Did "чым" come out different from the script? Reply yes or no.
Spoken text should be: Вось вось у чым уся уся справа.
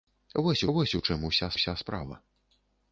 no